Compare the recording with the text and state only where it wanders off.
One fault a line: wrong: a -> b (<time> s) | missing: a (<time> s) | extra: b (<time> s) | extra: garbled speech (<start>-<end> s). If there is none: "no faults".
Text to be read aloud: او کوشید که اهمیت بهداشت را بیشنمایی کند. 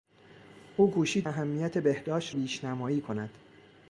missing: که (1.3 s)
missing: را (2.4 s)